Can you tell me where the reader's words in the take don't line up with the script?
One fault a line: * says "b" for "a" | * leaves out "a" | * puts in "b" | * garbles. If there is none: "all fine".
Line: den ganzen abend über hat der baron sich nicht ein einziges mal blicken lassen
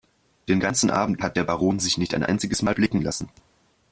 * leaves out "über"